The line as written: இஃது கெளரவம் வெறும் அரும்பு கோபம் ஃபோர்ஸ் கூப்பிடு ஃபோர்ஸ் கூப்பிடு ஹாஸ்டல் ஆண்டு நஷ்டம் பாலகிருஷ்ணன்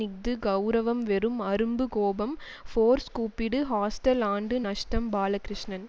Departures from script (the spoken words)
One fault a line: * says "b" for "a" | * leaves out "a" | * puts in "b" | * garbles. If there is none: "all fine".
* leaves out "ஃபோர்ஸ் கூப்பிடு"